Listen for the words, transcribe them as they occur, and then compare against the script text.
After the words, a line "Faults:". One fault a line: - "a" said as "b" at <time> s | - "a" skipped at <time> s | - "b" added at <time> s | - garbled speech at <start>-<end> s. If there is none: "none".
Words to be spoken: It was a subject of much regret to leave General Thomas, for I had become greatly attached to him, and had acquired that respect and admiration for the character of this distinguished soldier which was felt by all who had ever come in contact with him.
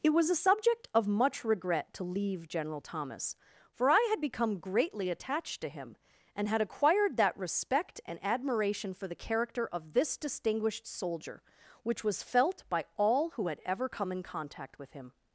It was a subject of much regret to leave General Thomas, for I had become greatly attached to him, and had acquired that respect and admiration for the character of this distinguished soldier which was felt by all who had ever come in contact with him.
Faults:
none